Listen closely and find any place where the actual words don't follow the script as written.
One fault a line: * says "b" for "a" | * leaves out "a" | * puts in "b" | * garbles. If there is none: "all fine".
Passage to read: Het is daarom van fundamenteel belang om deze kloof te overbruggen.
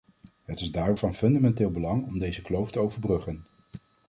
all fine